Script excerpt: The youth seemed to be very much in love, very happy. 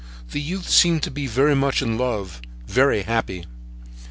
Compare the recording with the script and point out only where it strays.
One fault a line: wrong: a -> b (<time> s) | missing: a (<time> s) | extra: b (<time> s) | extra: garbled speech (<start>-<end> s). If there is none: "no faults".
no faults